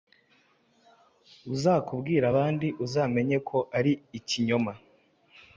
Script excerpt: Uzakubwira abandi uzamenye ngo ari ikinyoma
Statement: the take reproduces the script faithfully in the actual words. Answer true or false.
false